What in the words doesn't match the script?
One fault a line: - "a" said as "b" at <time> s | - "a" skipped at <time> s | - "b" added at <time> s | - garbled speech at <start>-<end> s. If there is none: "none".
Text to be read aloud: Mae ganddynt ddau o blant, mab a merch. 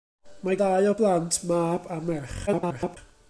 - "ganddynt" skipped at 0.6 s
- garbled speech at 2.5-3.0 s